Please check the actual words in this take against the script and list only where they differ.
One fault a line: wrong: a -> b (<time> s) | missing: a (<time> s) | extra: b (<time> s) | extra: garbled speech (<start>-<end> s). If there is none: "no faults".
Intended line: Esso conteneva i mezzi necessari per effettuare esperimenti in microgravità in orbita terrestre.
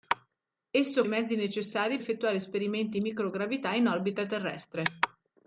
missing: conteneva (1.0 s)
missing: per (2.0 s)